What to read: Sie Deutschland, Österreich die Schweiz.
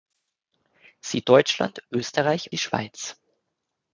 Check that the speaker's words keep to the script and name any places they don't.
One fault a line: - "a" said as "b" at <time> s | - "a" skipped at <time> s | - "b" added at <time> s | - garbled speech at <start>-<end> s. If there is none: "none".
none